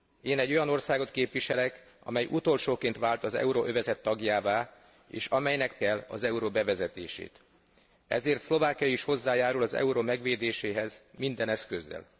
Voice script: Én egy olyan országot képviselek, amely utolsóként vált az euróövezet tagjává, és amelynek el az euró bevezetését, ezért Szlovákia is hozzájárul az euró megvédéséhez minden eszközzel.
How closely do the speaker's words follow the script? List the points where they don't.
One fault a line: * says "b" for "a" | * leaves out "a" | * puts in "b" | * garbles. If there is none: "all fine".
all fine